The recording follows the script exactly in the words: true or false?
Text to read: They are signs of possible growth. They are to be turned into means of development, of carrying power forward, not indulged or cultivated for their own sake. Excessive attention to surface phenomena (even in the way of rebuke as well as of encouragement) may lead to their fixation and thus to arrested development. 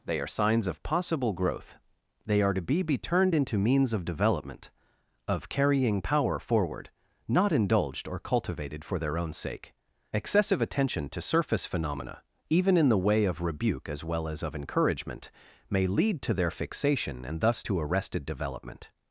false